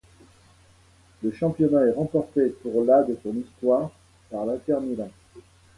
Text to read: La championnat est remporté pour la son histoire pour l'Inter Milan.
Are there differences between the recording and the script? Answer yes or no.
yes